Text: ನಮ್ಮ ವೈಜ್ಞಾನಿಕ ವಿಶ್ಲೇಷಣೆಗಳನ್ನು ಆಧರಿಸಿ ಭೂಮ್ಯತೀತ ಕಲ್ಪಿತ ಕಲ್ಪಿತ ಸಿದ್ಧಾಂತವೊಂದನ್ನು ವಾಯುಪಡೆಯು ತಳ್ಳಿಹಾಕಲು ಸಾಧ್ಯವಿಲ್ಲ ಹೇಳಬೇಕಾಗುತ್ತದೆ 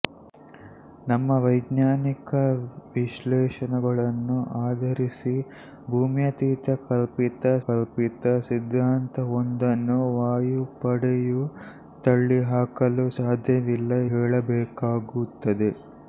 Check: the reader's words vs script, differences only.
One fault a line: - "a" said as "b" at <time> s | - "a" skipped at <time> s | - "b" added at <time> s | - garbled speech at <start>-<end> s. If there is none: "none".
none